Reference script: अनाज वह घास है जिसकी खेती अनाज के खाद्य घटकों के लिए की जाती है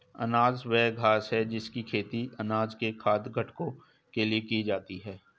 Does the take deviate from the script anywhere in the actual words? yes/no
no